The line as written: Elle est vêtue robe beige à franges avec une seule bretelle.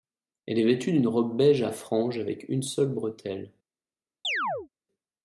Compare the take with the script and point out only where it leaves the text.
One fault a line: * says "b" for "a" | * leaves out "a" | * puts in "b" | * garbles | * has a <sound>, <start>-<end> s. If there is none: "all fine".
* puts in "d'une"
* has a chirp, 4.2-4.7 s